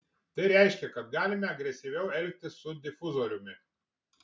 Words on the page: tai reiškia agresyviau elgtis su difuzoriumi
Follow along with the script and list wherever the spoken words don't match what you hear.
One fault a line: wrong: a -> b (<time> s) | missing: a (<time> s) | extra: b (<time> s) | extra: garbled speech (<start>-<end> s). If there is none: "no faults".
extra: kad galime (0.9 s)